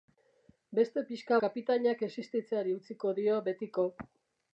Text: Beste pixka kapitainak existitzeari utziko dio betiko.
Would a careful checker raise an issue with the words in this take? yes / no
no